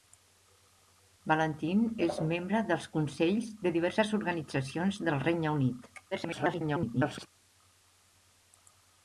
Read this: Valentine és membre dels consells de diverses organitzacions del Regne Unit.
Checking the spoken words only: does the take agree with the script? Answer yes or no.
no